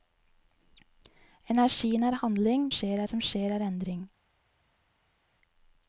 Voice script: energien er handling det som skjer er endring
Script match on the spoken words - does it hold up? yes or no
no